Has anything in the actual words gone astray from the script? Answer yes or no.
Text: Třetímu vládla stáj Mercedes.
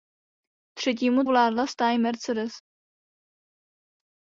no